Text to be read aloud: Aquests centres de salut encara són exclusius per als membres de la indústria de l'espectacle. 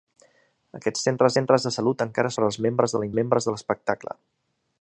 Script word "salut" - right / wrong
right